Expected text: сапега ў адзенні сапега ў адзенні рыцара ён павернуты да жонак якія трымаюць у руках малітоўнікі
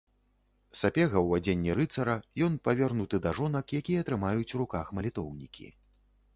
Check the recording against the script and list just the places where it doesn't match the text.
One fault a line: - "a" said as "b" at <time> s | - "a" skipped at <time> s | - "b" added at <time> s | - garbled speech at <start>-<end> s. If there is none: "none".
- "сапега ў адзенні" skipped at 1.8 s